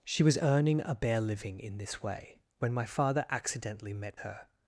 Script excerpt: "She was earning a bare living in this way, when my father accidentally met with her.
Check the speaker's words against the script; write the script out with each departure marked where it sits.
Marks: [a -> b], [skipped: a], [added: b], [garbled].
"She was earning a bare living in this way, when my father accidentally met [skipped: with] her.